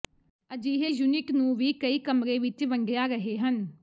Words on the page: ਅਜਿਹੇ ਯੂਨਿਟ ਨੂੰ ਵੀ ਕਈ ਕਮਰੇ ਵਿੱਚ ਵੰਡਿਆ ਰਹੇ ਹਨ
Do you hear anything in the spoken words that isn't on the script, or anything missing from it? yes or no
no